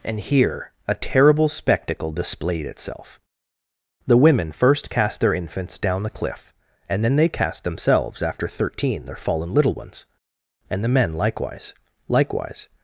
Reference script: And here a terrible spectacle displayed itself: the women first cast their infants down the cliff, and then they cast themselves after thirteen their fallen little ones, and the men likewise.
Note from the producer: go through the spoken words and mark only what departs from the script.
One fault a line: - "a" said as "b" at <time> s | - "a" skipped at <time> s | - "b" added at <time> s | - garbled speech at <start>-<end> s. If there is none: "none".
- "likewise" added at 12.1 s